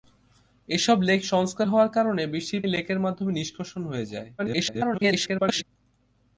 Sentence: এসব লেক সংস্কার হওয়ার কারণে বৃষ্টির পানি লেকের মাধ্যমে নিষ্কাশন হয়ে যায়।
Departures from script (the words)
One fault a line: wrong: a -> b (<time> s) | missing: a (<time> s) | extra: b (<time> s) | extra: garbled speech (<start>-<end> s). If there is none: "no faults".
missing: পানি (2.6 s)
extra: garbled speech (4.4-5.6 s)